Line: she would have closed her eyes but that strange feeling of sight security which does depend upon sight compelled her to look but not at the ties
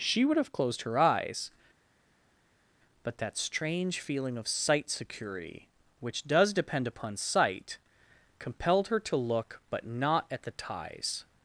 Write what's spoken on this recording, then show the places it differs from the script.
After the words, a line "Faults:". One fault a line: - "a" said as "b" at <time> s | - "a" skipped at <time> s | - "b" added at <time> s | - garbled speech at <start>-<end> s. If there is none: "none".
she would have closed her eyes but that strange feeling of sight security which does depend upon sight compelled her to look but not at the ties
Faults:
none